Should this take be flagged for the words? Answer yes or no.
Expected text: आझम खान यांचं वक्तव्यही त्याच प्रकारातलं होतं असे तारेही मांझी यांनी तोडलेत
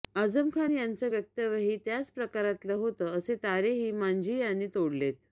no